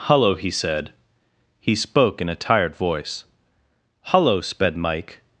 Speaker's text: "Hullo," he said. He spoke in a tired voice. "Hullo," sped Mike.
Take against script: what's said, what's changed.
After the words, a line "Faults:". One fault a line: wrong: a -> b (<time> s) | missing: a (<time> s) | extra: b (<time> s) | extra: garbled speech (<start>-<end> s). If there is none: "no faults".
"Hullo," he said. He spoke in a tired voice. "Hullo," sped Mike.
Faults:
no faults